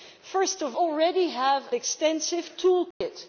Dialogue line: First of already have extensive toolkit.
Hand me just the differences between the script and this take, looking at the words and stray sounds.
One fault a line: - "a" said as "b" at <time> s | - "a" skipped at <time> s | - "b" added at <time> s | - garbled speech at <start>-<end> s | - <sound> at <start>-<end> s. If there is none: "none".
- dropout at 2.9-3.0 s